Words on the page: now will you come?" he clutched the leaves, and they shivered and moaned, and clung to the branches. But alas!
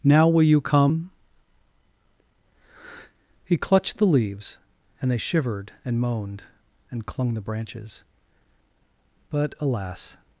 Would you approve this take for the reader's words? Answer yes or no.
no